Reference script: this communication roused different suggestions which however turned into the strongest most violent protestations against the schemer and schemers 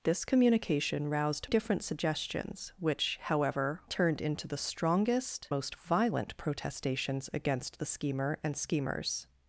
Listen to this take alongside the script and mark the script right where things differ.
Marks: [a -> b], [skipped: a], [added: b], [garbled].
this communication roused different suggestions which however turned into the strongest most violent protestations against the schemer and schemers